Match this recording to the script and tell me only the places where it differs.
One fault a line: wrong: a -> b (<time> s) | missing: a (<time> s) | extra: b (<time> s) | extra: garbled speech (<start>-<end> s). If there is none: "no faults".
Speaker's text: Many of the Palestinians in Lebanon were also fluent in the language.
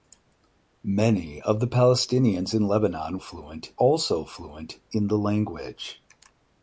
wrong: were -> fluent (3.2 s)